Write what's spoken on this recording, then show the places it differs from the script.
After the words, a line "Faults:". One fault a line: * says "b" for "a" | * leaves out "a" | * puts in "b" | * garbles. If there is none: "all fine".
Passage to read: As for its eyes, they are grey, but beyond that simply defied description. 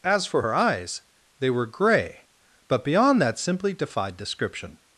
As for her eyes, they were grey, but beyond that simply defied description.
Faults:
* says "her" for "its"
* says "were" for "are"